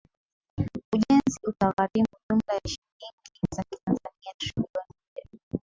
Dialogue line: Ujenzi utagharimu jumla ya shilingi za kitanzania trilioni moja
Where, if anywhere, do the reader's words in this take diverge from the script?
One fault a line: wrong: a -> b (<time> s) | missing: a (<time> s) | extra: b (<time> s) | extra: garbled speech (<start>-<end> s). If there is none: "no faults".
no faults